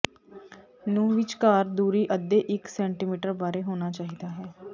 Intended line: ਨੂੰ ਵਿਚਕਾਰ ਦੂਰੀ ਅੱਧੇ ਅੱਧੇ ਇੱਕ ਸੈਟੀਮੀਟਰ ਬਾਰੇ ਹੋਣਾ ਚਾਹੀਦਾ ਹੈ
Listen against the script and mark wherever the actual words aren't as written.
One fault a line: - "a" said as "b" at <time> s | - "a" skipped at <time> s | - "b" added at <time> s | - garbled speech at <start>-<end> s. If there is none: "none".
- "ਅੱਧੇ" skipped at 2.4 s